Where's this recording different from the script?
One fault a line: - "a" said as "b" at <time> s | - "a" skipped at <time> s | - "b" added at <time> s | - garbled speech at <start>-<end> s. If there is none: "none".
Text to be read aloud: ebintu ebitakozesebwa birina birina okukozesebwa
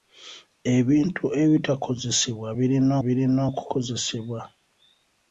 none